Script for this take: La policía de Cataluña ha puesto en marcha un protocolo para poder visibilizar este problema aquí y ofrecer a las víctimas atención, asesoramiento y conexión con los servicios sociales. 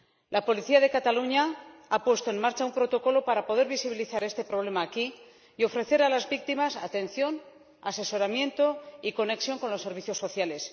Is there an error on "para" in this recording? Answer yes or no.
no